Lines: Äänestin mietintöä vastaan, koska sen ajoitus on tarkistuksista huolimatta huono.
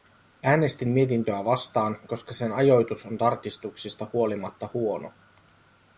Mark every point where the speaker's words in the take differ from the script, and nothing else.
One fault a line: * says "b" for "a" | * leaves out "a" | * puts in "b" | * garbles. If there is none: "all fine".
all fine